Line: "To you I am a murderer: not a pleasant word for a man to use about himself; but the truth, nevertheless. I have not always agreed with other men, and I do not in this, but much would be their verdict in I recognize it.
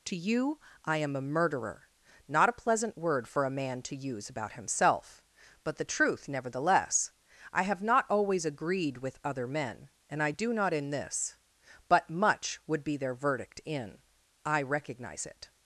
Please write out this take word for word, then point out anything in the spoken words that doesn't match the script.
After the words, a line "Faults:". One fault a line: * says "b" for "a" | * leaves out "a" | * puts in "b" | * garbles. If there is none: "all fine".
"To you I am a murderer: not a pleasant word for a man to use about himself; but the truth, nevertheless. I have not always agreed with other men, and I do not in this, but much would be their verdict in I recognize it.
Faults:
all fine